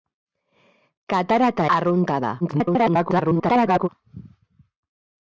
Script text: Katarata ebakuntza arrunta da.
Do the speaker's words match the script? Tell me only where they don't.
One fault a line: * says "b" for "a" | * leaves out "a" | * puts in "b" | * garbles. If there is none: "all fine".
* leaves out "ebakuntza"
* garbles